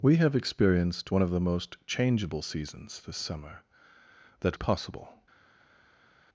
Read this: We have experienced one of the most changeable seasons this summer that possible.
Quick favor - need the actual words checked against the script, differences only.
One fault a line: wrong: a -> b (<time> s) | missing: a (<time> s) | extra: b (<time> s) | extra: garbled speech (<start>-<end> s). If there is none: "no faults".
no faults